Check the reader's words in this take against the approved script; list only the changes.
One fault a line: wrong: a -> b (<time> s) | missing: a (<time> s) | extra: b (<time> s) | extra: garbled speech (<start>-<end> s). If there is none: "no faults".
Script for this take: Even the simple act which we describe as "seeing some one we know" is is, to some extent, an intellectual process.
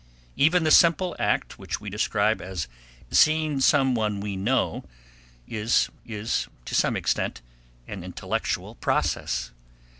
no faults